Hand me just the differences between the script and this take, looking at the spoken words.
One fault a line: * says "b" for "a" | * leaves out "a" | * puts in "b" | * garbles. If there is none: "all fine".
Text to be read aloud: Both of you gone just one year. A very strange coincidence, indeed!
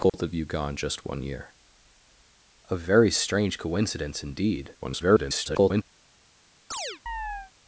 * garbles